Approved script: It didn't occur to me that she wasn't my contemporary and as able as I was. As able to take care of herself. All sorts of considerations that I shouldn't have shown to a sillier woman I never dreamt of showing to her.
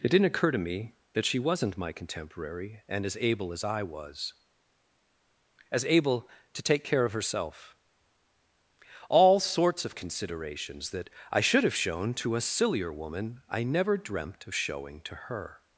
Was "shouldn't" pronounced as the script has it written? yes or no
no